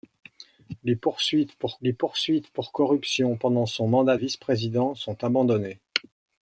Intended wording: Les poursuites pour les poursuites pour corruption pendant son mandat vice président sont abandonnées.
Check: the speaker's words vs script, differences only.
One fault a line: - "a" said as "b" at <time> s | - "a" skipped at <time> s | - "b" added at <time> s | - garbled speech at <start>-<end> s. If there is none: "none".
none